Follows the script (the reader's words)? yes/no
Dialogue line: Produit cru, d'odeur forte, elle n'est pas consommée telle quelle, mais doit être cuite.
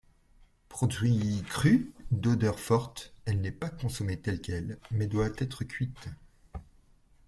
yes